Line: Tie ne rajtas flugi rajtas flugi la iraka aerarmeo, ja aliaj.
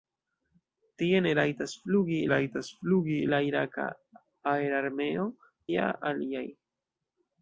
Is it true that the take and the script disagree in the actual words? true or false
false